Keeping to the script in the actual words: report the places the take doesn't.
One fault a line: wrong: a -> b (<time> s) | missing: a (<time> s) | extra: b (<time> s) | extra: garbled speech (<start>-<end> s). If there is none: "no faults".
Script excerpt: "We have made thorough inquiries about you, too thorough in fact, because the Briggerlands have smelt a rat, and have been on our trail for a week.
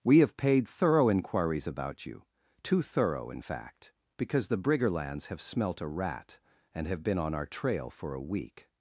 wrong: made -> paid (0.4 s)